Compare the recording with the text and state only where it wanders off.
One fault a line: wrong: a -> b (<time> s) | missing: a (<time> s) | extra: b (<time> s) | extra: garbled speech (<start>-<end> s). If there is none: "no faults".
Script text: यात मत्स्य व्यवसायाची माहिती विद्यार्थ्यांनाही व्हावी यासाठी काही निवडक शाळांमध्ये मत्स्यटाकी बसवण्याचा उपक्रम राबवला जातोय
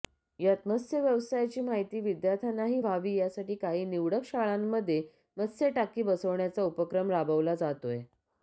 no faults